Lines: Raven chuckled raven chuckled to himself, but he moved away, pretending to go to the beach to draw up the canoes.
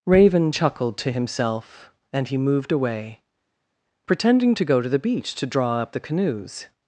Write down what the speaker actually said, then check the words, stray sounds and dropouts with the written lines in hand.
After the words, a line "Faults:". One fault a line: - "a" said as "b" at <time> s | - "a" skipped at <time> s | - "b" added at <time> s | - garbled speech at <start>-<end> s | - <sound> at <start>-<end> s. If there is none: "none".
Raven chuckled to himself, and he moved away, pretending to go to the beach to draw up the canoes.
Faults:
- "raven chuckled" skipped at 1.0 s
- "but" said as "and" at 2.1 s